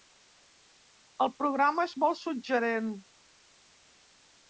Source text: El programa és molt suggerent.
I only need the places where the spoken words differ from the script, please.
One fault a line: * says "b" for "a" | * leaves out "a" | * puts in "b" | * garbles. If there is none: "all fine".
all fine